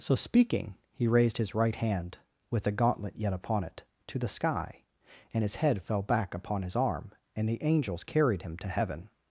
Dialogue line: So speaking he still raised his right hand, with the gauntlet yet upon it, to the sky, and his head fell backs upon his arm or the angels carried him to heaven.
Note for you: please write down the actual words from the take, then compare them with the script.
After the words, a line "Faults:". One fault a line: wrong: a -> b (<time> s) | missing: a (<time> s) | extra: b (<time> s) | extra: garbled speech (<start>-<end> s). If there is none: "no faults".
So speaking he raised his right hand, with the gauntlet yet upon it, to the sky, and his head fell back upon his arm and the angels carried him to heaven.
Faults:
missing: still (1.1 s)
wrong: backs -> back (6.0 s)
wrong: or -> and (7.3 s)